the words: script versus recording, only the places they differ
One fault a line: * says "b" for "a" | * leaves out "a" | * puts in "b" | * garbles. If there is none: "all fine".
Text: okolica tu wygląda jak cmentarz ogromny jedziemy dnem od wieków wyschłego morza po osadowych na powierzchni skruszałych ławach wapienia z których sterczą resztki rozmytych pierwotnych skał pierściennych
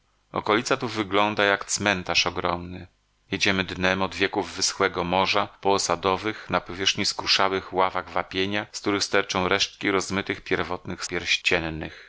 * leaves out "skał"